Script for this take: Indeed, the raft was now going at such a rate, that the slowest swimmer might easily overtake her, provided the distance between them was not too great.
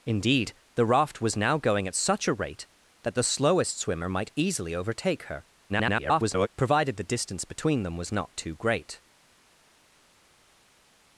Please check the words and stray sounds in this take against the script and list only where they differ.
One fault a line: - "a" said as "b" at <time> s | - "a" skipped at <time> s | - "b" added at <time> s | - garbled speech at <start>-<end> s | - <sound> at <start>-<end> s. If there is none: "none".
- garbled speech at 5.7-6.5 s